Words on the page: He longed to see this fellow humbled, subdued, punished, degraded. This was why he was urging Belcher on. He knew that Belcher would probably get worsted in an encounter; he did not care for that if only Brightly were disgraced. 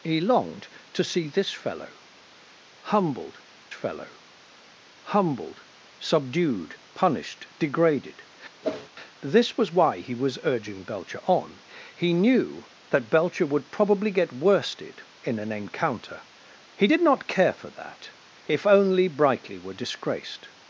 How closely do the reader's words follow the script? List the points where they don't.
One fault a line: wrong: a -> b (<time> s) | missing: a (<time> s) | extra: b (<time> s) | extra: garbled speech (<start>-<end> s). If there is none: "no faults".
extra: fellow humbled (3.7 s)